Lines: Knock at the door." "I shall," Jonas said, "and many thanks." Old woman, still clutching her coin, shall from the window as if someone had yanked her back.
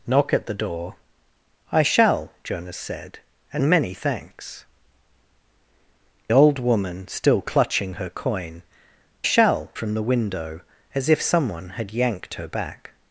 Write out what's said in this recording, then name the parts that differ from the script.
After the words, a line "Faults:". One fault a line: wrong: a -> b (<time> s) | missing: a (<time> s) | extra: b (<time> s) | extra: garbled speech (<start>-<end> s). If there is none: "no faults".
Knock at the door." "I shall," Jonas said, "and many thanks." Old woman, still clutching her coin, shall from the window as if someone had yanked her back.
Faults:
no faults